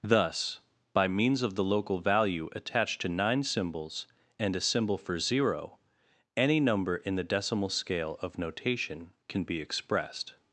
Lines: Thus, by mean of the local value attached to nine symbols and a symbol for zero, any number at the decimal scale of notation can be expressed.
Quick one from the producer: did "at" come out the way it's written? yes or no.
no